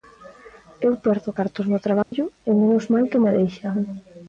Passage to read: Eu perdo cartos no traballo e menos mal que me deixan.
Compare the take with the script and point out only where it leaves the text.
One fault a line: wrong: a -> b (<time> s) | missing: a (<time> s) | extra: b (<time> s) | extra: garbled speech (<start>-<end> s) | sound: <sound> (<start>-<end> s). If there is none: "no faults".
sound: dropout (2.0-2.1 s)